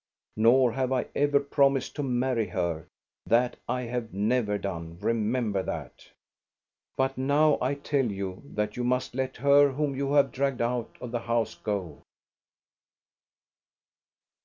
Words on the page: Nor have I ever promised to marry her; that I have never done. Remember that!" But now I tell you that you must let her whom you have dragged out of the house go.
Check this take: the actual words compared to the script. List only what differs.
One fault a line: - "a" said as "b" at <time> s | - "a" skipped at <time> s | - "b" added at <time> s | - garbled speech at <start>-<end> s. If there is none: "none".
none